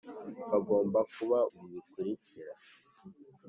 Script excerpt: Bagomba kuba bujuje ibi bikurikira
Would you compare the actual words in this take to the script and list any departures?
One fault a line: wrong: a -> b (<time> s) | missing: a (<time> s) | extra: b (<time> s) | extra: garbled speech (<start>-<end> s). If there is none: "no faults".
missing: bujuje (1.4 s)